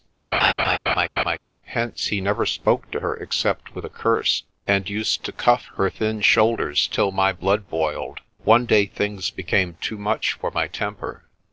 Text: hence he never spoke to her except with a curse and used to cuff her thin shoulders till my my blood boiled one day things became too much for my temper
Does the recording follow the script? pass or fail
fail